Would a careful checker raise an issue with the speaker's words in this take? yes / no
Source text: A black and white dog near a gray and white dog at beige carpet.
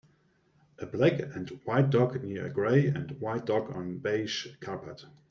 yes